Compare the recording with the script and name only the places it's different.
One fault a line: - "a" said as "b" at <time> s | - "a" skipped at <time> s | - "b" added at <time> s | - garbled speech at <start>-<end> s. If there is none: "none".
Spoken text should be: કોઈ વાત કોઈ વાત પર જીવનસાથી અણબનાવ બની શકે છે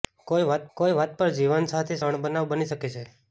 none